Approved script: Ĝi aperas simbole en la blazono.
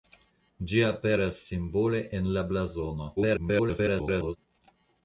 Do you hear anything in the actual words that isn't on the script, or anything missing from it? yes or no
yes